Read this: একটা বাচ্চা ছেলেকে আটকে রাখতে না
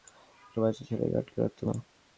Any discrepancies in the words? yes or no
no